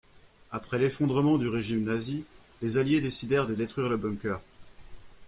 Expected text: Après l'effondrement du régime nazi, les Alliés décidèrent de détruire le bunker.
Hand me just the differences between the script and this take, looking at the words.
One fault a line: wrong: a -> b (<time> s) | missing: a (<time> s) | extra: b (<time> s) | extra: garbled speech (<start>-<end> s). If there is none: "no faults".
no faults